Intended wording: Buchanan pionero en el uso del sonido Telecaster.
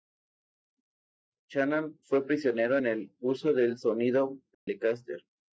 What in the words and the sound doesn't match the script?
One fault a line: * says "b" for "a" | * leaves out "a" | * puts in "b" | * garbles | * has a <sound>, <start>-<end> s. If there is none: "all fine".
* puts in "fue"
* has a dropout, 4.5-4.7 s